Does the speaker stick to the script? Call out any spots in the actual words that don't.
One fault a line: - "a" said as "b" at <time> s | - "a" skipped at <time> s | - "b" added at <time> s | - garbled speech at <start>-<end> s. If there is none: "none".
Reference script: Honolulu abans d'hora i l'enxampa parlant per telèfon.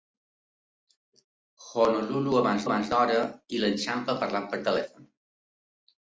- "abans" added at 2.7 s